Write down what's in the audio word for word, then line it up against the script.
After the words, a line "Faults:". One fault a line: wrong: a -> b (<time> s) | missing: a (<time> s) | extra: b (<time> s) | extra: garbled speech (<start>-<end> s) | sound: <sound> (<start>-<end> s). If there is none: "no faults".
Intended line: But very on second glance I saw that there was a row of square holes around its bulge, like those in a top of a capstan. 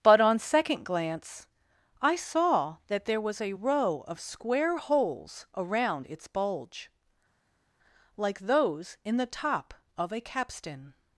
But on second glance I saw that there was a row of square holes around its bulge, like those in the top of a capstan.
Faults:
missing: very (0.2 s)
wrong: a -> the (9.2 s)